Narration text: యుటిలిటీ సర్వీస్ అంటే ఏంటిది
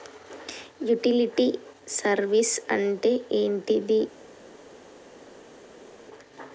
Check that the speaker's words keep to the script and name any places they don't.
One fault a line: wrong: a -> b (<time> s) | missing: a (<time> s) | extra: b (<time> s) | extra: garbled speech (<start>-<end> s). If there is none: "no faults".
no faults